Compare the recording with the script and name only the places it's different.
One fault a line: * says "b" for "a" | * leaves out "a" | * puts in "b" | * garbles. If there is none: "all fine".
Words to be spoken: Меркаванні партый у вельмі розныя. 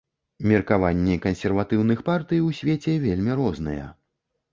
* puts in "кансерватыўных"
* puts in "свеце"